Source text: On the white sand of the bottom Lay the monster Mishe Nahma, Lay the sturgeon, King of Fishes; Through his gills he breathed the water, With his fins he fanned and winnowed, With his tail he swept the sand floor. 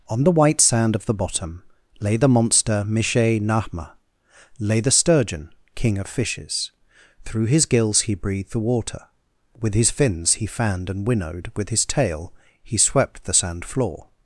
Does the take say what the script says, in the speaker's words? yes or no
yes